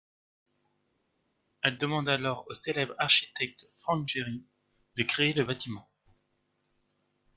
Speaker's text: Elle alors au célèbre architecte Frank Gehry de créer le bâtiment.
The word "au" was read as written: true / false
true